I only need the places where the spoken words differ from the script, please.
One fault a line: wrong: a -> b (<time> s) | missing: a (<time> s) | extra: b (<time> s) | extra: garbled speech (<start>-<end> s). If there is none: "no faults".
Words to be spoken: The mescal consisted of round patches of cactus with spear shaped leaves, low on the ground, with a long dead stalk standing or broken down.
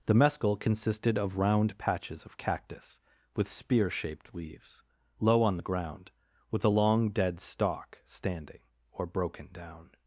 no faults